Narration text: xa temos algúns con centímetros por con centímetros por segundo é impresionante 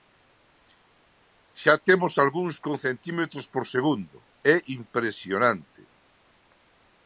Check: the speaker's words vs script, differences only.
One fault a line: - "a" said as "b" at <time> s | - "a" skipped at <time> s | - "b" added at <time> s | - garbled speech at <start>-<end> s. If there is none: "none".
- "con centímetros por" skipped at 3.6 s